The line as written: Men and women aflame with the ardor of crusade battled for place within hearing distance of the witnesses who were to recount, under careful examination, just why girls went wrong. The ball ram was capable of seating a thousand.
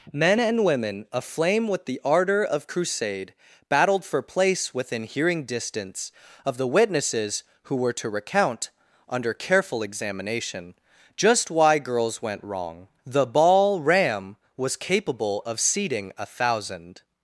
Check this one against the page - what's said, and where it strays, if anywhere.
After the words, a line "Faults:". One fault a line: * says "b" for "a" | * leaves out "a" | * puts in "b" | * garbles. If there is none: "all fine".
Men and women aflame with the ardor of crusade battled for place within hearing distance of the witnesses who were to recount, under careful examination, just why girls went wrong. The ball ram was capable of seating a thousand.
Faults:
all fine